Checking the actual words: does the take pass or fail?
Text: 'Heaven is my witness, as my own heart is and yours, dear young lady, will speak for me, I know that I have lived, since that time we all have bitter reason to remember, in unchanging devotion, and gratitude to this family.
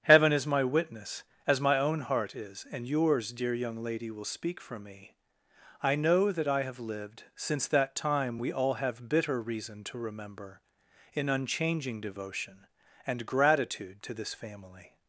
pass